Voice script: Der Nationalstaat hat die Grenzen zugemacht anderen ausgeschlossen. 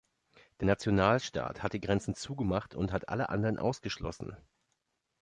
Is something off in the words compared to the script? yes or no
yes